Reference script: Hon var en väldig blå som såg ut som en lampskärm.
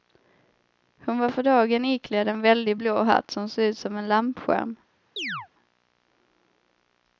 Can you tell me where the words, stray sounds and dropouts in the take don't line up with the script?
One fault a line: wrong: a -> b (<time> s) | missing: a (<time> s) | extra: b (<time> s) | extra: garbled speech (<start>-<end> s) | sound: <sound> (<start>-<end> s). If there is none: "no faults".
extra: för dagen iklädd (1.3 s)
extra: hatt (3.0 s)
sound: chirp (5.2-5.5 s)